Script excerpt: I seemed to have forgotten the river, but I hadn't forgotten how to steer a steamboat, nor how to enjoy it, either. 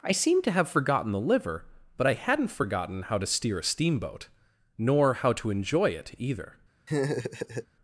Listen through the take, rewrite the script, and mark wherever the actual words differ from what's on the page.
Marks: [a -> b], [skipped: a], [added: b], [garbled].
I seemed to have forgotten the [river, -> liver] but I hadn't forgotten how to steer a steamboat, nor how to enjoy it, either.